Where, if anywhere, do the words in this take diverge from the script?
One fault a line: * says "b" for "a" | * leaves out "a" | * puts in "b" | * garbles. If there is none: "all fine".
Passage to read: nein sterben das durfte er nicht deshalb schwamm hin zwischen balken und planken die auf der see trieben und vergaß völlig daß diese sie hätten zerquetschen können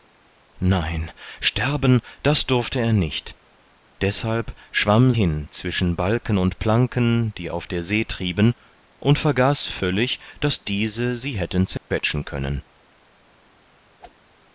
all fine